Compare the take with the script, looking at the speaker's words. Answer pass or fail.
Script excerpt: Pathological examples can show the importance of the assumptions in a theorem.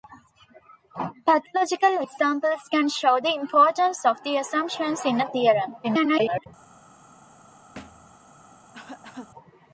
fail